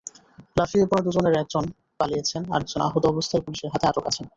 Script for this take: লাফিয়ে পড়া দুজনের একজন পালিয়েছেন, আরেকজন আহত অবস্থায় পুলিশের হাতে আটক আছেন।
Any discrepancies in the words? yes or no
no